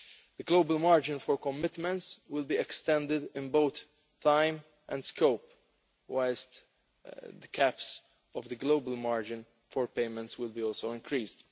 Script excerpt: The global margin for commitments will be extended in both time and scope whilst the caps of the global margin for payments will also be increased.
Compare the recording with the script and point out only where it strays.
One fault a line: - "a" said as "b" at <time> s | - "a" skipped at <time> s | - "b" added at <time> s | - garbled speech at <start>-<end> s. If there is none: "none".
none